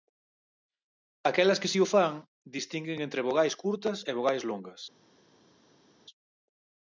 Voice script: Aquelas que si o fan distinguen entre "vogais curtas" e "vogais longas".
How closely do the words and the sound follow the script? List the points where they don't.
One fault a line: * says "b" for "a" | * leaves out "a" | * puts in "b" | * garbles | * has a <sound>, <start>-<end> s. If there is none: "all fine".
all fine